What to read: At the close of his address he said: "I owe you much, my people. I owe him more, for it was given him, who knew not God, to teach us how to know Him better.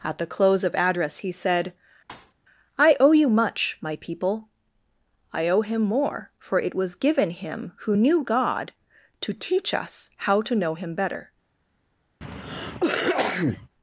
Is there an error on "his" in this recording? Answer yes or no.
yes